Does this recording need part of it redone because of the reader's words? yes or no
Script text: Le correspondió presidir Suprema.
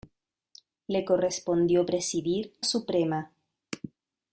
no